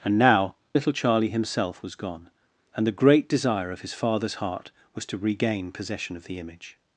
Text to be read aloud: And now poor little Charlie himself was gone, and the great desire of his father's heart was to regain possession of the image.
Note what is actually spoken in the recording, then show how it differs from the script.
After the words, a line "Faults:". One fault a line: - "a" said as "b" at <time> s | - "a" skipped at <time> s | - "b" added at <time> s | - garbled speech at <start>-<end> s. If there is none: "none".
And now little Charlie himself was gone, and the great desire of his father's heart was to regain possession of the image.
Faults:
- "poor" skipped at 0.6 s